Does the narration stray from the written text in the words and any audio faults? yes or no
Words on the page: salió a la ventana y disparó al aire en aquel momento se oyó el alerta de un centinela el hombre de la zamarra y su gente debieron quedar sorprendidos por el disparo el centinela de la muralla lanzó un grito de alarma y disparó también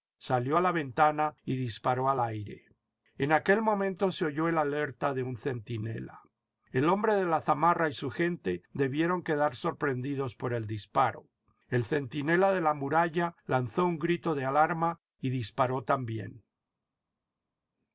no